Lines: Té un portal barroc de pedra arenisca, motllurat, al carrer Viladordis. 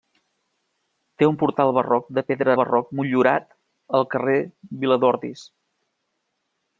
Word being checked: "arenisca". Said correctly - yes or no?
no